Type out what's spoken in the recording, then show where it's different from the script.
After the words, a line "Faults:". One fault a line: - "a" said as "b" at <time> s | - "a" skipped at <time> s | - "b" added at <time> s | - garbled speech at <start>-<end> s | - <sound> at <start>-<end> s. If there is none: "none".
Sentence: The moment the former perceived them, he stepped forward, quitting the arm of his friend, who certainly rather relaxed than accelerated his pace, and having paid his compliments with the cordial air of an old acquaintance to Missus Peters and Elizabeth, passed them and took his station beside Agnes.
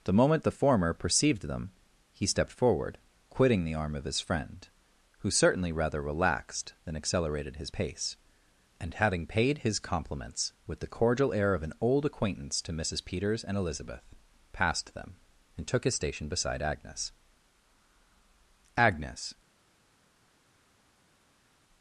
The moment the former perceived them, he stepped forward, quitting the arm of his friend, who certainly rather relaxed than accelerated his pace, and having paid his compliments with the cordial air of an old acquaintance to Missus Peters and Elizabeth, passed them and took his station beside Agnes Agnes.
Faults:
- "Agnes" added at 18.8 s